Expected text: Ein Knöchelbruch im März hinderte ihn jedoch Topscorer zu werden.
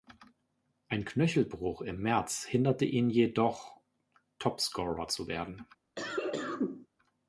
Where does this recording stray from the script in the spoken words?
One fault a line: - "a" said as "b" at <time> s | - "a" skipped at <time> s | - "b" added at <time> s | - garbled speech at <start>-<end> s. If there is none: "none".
none